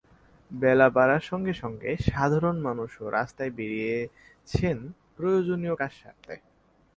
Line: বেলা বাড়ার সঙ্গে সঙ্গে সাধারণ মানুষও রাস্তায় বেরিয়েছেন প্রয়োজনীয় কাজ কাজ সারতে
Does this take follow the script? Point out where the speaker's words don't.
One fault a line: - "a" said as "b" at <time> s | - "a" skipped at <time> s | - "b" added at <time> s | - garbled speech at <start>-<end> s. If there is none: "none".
- "কাজ" skipped at 5.9 s